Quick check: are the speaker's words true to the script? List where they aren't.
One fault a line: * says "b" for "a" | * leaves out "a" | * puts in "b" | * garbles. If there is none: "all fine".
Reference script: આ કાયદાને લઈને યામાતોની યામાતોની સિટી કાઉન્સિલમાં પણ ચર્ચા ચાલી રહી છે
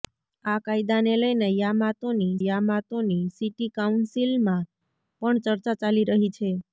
all fine